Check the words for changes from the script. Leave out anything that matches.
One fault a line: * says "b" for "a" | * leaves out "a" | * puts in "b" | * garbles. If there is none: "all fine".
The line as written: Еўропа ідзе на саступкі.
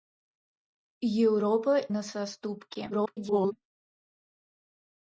* leaves out "ідзе"
* garbles